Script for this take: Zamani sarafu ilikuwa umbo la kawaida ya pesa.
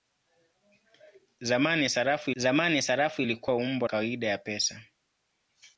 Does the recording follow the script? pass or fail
fail